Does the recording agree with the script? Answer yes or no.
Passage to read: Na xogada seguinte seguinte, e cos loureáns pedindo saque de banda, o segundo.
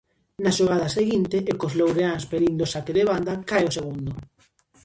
no